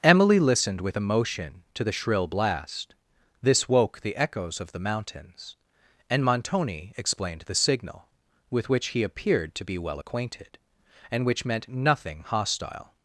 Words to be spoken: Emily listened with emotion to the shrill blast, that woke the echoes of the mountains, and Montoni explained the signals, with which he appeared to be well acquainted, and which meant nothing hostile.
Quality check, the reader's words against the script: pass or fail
fail